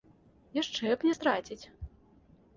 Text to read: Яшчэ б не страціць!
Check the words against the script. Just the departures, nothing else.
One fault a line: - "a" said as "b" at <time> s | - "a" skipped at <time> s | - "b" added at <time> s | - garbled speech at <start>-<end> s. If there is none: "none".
none